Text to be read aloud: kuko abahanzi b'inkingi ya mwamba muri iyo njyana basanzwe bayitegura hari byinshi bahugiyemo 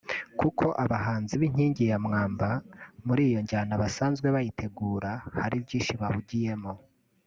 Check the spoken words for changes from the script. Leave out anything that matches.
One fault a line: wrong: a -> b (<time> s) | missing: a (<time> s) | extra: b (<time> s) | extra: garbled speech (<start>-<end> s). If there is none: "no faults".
no faults